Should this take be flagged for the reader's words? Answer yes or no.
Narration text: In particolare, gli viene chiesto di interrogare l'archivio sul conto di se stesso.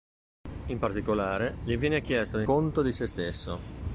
yes